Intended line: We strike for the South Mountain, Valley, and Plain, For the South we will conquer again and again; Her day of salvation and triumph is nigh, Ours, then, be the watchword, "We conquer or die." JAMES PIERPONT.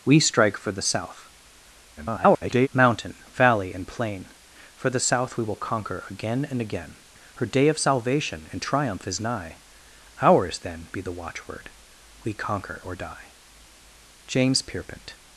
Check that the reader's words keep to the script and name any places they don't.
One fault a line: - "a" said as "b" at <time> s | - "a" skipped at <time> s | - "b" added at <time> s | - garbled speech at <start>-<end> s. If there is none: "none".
- garbled speech at 2.0-2.7 s